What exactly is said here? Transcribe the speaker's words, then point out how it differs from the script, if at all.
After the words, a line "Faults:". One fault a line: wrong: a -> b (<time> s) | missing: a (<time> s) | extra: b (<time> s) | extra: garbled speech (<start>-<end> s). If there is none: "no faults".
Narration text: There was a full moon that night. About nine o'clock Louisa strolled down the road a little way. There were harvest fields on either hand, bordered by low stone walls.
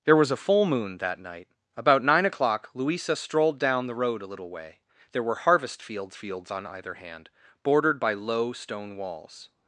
There was a full moon that night. About nine o'clock Louisa strolled down the road a little way. There were harvest fields fields on either hand, bordered by low stone walls.
Faults:
extra: fields (6.2 s)